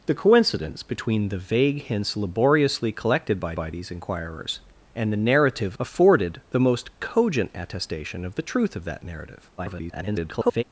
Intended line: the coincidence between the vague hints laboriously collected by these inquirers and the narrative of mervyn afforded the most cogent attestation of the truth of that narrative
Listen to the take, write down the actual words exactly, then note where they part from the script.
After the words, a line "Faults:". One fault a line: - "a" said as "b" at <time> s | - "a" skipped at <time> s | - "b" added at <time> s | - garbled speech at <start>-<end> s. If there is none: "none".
the coincidence between the vague hints laboriously collected by by these inquirers and the narrative afforded the most cogent attestation of the truth of that narrative [garbled]
Faults:
- "by" added at 3.5 s
- "of mervyn" skipped at 5.8 s
- garbled speech at 9.6-10.6 s